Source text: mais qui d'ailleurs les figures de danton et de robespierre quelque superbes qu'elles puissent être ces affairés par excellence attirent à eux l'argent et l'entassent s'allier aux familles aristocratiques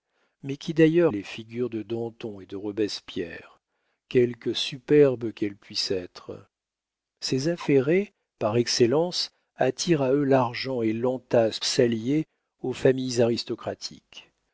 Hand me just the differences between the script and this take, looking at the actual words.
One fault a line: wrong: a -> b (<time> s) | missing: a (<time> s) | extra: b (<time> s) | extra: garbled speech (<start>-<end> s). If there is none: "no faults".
no faults